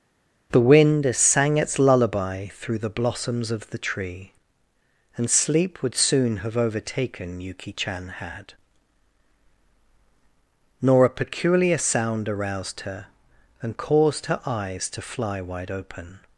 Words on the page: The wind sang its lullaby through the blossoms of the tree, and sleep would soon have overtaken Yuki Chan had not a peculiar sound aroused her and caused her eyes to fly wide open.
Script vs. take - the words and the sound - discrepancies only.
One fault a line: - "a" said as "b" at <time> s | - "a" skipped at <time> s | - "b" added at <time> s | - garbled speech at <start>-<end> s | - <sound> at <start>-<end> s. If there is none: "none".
- "not" said as "nor" at 10.8 s